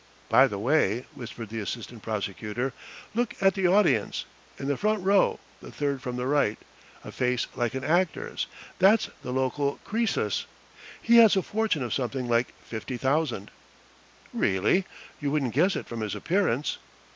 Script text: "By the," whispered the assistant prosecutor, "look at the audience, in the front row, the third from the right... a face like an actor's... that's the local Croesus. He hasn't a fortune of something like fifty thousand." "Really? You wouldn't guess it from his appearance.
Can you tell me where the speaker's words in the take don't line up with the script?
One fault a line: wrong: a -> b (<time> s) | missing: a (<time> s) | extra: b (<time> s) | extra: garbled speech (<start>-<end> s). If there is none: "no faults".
extra: way (0.6 s)
wrong: hasn't -> has (11.2 s)